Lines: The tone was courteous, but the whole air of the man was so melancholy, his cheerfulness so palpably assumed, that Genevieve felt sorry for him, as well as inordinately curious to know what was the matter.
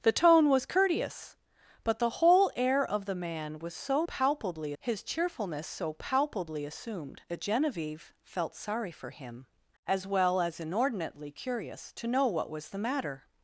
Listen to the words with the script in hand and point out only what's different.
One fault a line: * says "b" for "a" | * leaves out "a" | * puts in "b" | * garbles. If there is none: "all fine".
* says "palpably" for "melancholy"